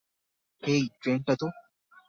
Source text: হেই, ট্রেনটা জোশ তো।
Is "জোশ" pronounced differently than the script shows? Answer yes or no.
yes